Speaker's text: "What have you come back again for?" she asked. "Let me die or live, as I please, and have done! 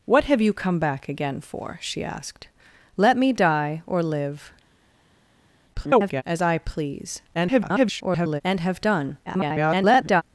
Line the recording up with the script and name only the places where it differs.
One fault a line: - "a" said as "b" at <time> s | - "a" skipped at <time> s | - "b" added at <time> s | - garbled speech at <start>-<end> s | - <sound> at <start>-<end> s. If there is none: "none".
- garbled speech at 5.7-6.2 s
- garbled speech at 7.3-8.4 s
- garbled speech at 9.3-10.2 s